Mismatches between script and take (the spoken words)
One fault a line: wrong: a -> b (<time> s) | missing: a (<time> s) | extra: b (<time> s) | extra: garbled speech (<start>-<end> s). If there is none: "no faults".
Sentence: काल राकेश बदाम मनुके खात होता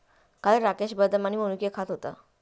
extra: आणि (1.2 s)